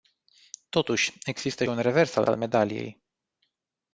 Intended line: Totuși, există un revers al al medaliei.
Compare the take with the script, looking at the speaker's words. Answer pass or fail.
pass